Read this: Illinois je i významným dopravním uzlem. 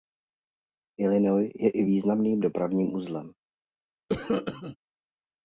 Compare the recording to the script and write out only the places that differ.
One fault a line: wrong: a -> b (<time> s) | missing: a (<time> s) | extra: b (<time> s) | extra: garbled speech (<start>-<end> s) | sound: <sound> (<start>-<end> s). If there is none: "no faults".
sound: cough (4.1-4.8 s)